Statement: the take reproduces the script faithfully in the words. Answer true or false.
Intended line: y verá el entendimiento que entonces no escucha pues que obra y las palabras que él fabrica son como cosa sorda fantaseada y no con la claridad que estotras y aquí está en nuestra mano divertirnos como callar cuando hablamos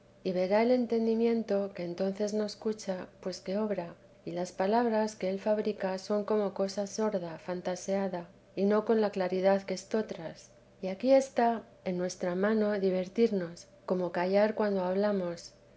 true